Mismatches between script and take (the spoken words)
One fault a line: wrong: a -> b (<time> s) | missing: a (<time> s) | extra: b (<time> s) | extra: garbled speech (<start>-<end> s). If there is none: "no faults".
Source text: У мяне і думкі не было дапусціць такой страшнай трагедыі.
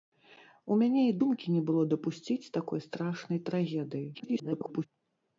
extra: garbled speech (4.1-4.9 s)